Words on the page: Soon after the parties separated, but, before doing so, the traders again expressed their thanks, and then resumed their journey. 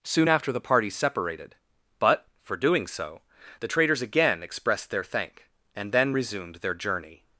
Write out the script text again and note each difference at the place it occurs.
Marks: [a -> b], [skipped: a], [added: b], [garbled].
Soon after the parties separated, but, [before -> for] doing so, the traders again expressed their [thanks, -> thank] and then resumed their journey.